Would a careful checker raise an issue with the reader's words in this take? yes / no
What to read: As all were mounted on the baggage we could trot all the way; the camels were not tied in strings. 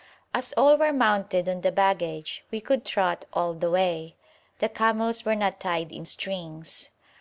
no